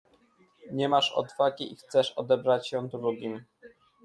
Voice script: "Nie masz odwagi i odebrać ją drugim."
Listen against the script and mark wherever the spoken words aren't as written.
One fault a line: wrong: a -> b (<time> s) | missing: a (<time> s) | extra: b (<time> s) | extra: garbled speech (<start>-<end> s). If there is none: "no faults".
extra: chcesz (1.8 s)